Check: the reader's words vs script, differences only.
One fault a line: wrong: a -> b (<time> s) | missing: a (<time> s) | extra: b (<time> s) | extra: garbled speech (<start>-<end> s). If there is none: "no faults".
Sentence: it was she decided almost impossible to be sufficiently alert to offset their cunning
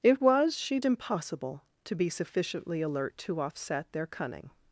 missing: decided almost (0.8 s)